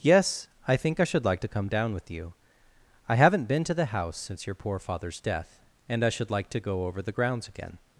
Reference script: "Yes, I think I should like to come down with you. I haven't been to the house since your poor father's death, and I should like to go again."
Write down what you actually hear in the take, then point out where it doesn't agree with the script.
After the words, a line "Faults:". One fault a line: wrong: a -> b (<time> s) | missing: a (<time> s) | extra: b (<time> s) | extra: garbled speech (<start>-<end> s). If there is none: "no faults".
"Yes, I think I should like to come down with you. I haven't been to the house since your poor father's death, and I should like to go over the grounds again."
Faults:
extra: over the grounds (6.9 s)